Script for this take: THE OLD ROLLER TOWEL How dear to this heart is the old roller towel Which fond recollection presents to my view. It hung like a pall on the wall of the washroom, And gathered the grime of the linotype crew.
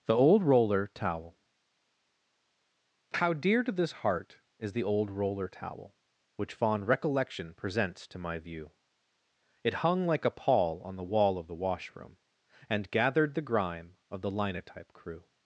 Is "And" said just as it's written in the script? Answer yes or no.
yes